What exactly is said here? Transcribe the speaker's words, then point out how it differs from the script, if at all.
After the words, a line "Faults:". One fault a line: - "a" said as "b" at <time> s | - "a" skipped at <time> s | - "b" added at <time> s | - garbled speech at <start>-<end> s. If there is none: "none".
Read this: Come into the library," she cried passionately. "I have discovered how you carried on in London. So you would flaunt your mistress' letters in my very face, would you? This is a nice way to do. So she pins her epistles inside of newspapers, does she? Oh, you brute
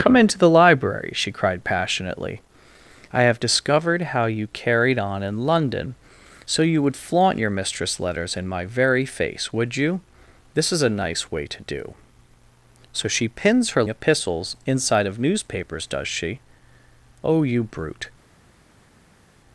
Come into the library," she cried passionately. "I have discovered how you carried on in London. So you would flaunt your mistress' letters in my very face, would you? This is a nice way to do. So she pins her epistles inside of newspapers, does she? Oh, you brute
Faults:
none